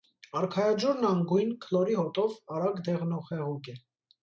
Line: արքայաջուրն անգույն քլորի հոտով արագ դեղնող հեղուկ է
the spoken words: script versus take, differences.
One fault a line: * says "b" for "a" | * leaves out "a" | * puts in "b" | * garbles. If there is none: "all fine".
all fine